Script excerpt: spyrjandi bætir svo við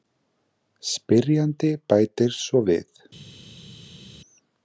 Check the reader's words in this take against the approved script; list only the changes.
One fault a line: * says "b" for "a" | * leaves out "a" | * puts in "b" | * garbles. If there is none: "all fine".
all fine